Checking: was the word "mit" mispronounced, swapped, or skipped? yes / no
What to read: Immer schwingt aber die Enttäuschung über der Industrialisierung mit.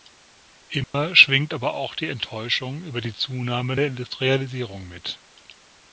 no